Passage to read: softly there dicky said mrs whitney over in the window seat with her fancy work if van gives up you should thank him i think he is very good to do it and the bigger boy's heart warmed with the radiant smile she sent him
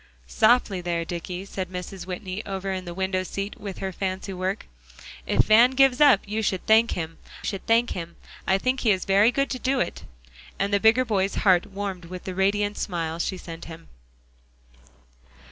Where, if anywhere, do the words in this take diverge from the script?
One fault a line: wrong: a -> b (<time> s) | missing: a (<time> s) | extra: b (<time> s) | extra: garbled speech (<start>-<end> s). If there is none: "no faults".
extra: should thank him (7.4 s)